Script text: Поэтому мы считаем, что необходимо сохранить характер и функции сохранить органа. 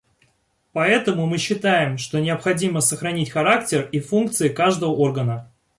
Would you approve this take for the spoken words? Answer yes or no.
no